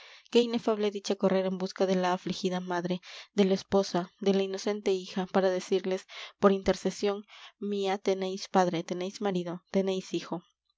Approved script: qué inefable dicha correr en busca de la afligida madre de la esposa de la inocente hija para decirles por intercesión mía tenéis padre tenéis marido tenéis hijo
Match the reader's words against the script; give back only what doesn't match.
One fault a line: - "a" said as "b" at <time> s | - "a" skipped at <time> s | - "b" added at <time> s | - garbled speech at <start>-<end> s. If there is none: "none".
none